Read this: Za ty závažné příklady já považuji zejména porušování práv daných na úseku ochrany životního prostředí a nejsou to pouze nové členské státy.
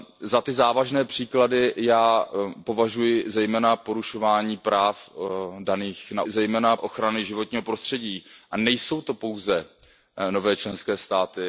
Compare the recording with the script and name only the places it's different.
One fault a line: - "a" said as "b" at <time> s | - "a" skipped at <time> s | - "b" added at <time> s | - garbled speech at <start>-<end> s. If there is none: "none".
- "úseku" said as "zejména" at 6.3 s